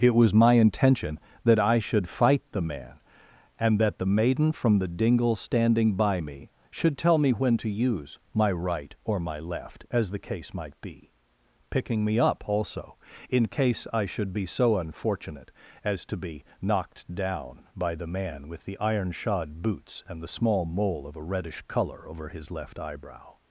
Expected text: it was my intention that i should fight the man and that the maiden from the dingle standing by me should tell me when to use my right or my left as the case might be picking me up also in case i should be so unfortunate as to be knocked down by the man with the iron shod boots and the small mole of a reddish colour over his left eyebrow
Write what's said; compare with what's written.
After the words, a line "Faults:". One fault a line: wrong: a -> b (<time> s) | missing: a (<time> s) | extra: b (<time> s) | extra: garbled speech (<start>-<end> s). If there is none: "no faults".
it was my intention that i should fight the man and that the maiden from the dingle standing by me should tell me when to use my right or my left as the case might be picking me up also in case i should be so unfortunate as to be knocked down by the man with the iron shod boots and the small mole of a reddish colour over his left eyebrow
Faults:
no faults